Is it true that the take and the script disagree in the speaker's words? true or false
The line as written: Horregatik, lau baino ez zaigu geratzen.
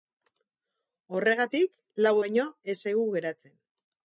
false